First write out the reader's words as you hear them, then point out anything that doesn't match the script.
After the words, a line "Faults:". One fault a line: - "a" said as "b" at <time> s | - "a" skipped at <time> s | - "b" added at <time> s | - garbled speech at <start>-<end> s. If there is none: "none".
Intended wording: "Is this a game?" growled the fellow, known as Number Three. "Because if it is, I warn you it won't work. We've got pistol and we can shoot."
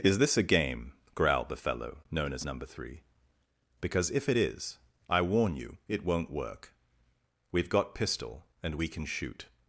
"Is this a game?" growled the fellow, known as Number Three. "Because if it is, I warn you it won't work. We've got pistol and we can shoot."
Faults:
none